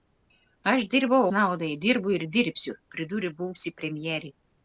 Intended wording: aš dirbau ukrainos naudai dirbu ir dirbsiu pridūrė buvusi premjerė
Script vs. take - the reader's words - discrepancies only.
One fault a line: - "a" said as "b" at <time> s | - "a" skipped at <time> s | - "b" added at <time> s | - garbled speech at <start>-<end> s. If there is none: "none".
- "ukrainos" skipped at 1.2 s